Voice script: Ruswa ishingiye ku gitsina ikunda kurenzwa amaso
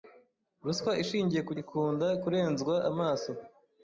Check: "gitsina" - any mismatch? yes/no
yes